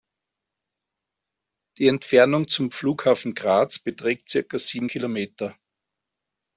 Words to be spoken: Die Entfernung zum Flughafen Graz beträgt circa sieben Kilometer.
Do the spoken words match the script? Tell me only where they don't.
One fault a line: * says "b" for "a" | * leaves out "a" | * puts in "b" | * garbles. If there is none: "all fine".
all fine